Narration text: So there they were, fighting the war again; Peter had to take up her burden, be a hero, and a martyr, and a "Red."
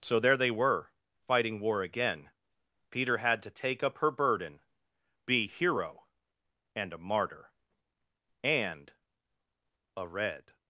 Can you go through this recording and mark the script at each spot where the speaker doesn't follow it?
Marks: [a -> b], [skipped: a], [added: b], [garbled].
So there they were, fighting [skipped: the] war again; Peter had to take up her burden, be [skipped: a] hero, and a martyr, and a "Red."